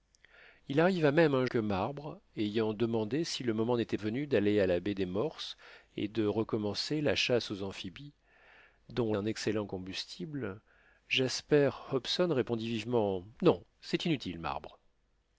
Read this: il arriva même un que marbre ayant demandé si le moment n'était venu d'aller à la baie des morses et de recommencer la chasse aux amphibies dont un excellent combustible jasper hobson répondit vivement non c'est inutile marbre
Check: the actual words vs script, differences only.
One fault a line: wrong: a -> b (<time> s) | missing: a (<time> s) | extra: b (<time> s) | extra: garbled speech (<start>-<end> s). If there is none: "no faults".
no faults